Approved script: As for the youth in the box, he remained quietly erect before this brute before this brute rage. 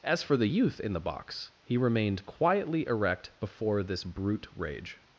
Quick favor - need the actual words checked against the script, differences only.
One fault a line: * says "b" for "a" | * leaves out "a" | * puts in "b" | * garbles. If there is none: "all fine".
* leaves out "before this brute"